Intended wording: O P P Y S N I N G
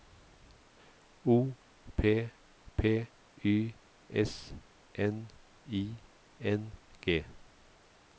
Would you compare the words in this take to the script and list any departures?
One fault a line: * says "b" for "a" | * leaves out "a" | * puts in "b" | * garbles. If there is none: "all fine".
all fine